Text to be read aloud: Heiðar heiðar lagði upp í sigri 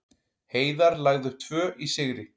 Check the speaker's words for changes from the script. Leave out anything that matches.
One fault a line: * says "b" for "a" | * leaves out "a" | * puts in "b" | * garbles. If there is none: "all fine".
* leaves out "heiðar"
* puts in "tvö"